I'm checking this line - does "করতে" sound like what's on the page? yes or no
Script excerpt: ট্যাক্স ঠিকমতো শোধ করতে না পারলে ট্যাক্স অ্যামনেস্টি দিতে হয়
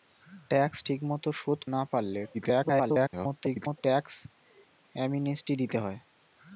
no